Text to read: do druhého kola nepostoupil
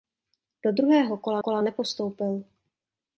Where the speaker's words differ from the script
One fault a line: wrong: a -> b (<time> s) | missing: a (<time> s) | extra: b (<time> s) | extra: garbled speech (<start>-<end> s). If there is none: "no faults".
extra: kola (1.4 s)